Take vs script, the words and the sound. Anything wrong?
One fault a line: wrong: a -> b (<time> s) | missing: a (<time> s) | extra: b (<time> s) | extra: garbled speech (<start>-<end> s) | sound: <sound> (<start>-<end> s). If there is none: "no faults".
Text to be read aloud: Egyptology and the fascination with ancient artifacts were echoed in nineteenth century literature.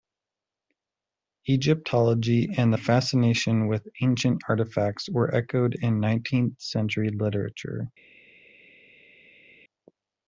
no faults